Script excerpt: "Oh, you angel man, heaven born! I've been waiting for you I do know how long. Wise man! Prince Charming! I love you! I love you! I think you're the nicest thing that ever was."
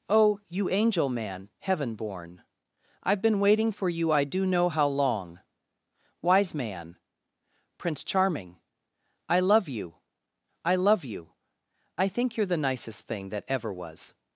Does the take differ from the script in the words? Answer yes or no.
no